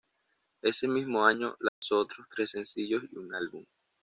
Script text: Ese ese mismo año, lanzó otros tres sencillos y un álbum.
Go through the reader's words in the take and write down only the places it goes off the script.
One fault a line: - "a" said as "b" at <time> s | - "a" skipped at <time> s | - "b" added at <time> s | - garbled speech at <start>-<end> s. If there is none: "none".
- "ese" skipped at 0.9 s